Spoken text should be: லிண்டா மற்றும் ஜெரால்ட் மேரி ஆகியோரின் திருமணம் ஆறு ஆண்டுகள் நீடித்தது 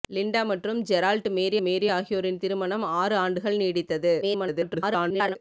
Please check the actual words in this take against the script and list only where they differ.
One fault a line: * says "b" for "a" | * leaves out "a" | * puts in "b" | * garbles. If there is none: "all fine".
* puts in "மேரி"
* garbles